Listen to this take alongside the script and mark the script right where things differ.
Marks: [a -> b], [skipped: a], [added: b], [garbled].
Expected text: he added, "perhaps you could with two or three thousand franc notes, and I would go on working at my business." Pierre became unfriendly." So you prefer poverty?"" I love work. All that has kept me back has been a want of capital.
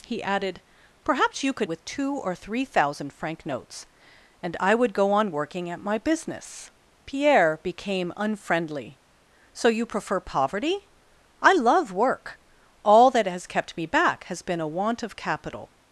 he added, "perhaps you could with two or three thousand franc notes, and I would go on working at my business." Pierre became unfriendly." So you prefer poverty?"" I love work. All that has kept me back has been a want of capital.